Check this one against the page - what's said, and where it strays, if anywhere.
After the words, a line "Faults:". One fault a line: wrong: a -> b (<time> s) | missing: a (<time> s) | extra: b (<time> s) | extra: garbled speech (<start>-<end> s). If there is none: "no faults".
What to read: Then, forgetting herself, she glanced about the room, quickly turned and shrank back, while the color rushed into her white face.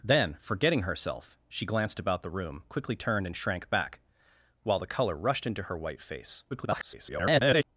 Then, forgetting herself, she glanced about the room, quickly turned and shrank back, while the color rushed into her white face. [garbled]
Faults:
extra: garbled speech (6.5-7.6 s)